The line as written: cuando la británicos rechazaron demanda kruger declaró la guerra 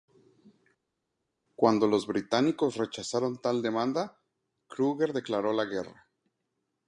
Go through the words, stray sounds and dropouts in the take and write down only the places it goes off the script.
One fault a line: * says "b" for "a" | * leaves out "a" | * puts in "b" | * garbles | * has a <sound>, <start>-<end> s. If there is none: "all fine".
* says "los" for "la"
* puts in "tal"